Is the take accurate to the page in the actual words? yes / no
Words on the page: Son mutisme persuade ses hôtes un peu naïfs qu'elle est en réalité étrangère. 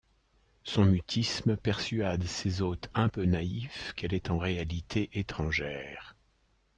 yes